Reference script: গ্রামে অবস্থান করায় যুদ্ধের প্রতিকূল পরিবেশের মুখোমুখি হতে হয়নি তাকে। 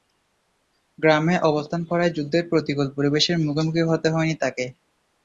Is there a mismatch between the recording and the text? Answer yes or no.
no